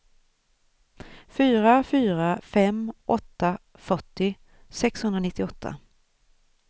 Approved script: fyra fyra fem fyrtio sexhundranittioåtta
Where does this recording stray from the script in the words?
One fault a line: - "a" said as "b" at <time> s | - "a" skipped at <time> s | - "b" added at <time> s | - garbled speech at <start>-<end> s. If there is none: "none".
- "åtta" added at 3.2 s